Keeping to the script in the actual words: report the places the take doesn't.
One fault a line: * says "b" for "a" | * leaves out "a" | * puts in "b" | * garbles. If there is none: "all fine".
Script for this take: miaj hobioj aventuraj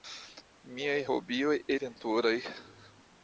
all fine